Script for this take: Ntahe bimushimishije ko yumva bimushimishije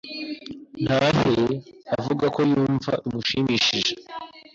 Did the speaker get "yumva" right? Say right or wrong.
right